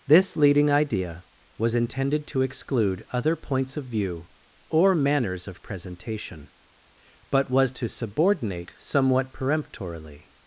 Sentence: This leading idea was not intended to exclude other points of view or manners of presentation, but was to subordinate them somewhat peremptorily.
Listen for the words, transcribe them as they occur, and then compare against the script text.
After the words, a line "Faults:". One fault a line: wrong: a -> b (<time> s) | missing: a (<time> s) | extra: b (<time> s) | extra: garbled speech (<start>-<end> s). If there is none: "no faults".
This leading idea was intended to exclude other points of view or manners of presentation, but was to subordinate somewhat peremptorily.
Faults:
missing: not (1.8 s)
missing: them (8.7 s)